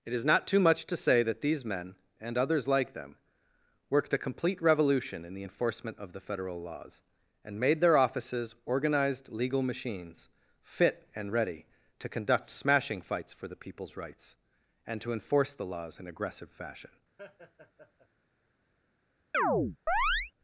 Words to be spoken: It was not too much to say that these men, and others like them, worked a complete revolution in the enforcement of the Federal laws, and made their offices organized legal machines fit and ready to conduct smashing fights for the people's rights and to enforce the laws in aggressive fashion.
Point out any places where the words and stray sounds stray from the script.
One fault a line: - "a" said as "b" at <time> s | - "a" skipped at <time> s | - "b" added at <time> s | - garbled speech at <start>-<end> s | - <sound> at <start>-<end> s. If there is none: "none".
- "was" said as "is" at 0.1 s
- laugh at 17.2-18.1 s
- chirp at 19.3-20.3 s